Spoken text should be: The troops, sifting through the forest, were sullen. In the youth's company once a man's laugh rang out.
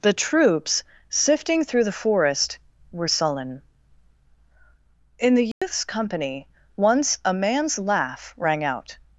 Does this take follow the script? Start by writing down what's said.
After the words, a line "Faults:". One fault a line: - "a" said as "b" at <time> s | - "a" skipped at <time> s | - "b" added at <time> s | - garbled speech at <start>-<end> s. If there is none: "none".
The troops, sifting through the forest, were sullen. In the youth's company once a man's laugh rang out.
Faults:
none